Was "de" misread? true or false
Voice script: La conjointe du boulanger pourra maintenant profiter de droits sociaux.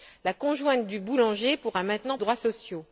true